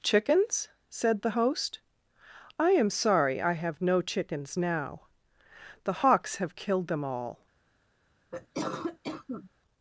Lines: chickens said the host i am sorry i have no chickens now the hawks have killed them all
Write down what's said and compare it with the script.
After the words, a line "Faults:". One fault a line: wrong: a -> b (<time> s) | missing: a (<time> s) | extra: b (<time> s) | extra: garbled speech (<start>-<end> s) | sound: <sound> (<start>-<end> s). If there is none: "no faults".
chickens said the host i am sorry i have no chickens now the hawks have killed them all
Faults:
sound: cough (8.3-9.5 s)